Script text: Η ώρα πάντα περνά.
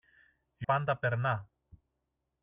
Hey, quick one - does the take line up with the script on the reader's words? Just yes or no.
no